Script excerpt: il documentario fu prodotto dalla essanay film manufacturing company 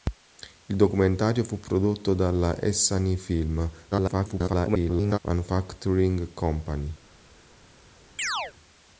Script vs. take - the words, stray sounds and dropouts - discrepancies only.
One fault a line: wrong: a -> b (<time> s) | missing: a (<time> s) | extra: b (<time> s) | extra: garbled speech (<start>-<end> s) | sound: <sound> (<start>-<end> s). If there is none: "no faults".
extra: garbled speech (3.9-5.2 s)
sound: chirp (8.2-8.5 s)